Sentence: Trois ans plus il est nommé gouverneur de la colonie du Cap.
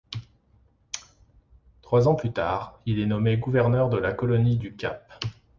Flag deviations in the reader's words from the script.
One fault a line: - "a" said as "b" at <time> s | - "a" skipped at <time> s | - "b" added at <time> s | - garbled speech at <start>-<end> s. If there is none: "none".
- "tard" added at 2.3 s